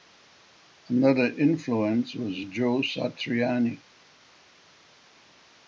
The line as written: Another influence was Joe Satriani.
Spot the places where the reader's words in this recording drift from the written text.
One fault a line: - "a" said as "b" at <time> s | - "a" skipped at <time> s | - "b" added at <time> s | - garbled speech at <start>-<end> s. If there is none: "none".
none